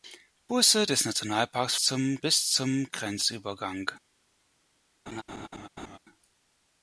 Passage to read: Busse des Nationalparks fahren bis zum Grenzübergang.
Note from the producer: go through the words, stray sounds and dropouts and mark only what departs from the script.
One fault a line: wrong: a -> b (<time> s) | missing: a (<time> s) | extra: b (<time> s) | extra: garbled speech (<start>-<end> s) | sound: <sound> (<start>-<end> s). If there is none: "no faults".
wrong: fahren -> zum (1.8 s)
sound: laugh (5.1-6.0 s)